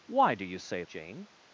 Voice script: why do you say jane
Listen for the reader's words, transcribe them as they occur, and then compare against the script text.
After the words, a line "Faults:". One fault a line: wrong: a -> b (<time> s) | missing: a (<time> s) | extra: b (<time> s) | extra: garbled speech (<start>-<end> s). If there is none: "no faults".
why do you say jane
Faults:
no faults